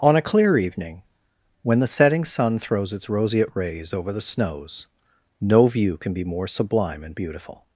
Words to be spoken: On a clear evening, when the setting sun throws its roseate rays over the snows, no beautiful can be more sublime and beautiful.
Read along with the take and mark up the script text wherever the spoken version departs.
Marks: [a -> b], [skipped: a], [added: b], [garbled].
On a clear evening, when the setting sun throws its roseate rays over the snows, no [beautiful -> view] can be more sublime and beautiful.